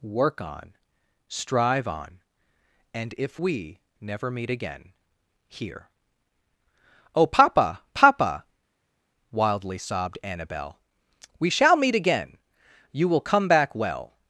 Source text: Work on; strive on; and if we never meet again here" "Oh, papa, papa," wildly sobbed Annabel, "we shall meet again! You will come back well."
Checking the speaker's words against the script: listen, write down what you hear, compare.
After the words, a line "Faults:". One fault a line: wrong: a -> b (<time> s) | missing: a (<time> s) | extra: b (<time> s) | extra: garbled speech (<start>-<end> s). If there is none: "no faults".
Work on; strive on; and if we never meet again here" "Oh, papa, papa," wildly sobbed Annabel, "we shall meet again! You will come back well."
Faults:
no faults